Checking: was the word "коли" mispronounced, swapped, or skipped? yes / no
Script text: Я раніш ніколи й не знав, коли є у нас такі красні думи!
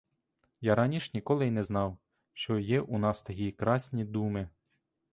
yes